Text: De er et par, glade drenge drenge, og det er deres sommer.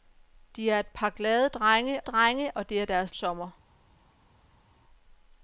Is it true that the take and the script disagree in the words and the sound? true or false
false